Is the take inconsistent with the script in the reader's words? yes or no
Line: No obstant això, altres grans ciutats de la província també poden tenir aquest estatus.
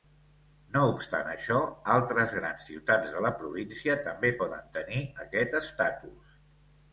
no